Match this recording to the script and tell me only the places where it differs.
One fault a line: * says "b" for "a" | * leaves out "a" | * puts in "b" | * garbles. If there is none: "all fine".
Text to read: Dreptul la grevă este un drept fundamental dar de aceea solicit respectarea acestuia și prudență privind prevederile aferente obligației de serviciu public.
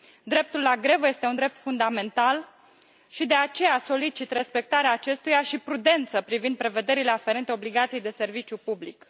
* says "și" for "dar"